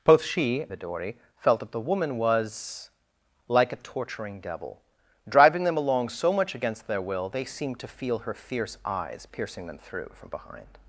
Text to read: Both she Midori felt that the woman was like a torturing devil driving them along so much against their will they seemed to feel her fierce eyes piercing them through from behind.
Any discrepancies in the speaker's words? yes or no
no